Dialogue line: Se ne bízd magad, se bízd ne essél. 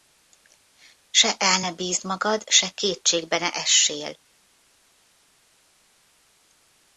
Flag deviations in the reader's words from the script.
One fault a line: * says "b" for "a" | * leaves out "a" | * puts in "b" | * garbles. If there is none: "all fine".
* puts in "el"
* says "kétségbe" for "bízd"